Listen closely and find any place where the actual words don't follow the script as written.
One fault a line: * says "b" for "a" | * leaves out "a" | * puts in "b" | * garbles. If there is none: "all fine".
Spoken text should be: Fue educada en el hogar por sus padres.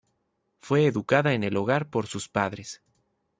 all fine